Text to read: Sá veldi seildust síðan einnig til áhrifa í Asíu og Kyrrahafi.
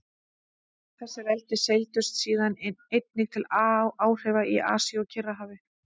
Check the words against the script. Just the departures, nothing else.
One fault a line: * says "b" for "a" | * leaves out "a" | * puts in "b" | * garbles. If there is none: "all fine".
* says "Þessi" for "Sá"